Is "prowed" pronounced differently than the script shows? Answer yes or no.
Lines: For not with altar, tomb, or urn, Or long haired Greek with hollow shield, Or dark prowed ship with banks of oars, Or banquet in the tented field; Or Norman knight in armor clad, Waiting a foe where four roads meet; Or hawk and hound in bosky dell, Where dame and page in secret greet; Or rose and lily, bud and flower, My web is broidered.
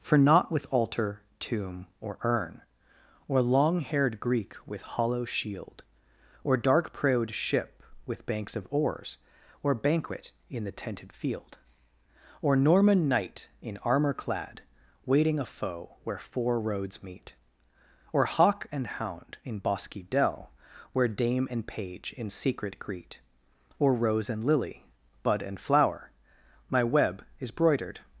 no